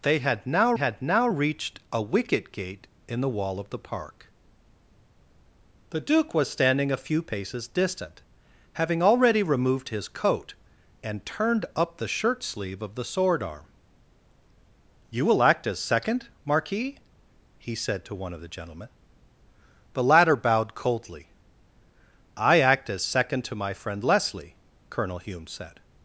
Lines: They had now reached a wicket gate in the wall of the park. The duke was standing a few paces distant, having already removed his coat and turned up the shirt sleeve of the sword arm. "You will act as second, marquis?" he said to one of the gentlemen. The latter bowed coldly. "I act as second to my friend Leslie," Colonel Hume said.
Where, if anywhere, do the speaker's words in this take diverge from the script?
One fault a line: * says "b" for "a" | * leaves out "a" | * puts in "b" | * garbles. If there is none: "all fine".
* puts in "had now"